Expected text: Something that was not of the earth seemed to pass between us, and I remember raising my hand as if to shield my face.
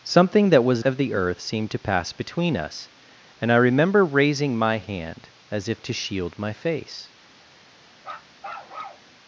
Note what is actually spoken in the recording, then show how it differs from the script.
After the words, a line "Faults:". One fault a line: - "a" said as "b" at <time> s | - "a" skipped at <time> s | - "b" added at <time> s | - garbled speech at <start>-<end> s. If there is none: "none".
Something that was of the earth seemed to pass between us, and I remember raising my hand as if to shield my face.
Faults:
- "not" skipped at 0.8 s